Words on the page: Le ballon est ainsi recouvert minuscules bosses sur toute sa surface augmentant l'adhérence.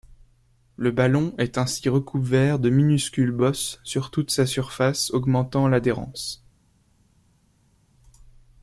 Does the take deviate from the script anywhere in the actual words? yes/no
yes